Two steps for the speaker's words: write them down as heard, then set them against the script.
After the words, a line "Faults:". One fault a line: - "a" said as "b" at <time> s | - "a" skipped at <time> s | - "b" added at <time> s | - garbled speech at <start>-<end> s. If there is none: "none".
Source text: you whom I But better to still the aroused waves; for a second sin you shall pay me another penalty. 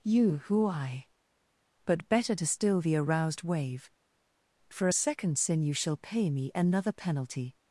you who I But better to still the aroused wave; for a second sin you shall pay me another penalty.
Faults:
- "whom" said as "who" at 0.5 s
- "waves" said as "wave" at 3.4 s